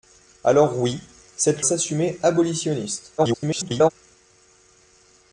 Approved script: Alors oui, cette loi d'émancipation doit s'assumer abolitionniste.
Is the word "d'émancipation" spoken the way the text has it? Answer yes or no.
no